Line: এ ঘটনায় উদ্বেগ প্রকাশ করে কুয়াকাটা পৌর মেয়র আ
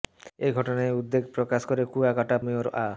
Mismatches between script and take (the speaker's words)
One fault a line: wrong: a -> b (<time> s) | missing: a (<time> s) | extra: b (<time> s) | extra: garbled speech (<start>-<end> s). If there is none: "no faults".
missing: পৌর (2.4 s)